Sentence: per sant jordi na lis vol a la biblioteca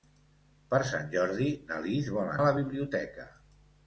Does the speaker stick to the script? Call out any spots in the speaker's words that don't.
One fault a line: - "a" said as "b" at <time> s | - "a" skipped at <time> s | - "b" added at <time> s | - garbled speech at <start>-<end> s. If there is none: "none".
none